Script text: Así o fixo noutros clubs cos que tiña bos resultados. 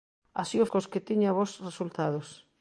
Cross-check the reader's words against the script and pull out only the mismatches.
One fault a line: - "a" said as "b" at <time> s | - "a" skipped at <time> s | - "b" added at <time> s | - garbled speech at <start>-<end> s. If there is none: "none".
- "fixo noutros clubs" skipped at 0.7 s